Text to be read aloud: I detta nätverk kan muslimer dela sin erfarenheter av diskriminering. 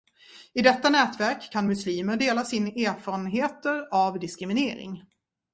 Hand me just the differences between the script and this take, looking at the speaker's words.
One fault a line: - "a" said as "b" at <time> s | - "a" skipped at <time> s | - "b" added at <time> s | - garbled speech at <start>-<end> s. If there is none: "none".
none